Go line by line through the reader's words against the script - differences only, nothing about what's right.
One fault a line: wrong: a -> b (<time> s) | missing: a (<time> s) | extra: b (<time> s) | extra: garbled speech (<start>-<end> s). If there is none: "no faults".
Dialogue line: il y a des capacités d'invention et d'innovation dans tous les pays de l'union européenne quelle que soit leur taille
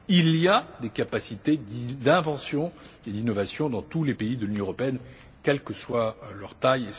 no faults